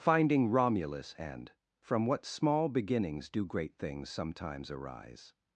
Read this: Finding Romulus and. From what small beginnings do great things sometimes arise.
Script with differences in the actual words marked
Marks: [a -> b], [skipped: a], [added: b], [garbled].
Finding Romulus and. From what small beginnings do great things sometimes arise.